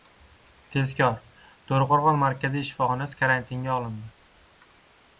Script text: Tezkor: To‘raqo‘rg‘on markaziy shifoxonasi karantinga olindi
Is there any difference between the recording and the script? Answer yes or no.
no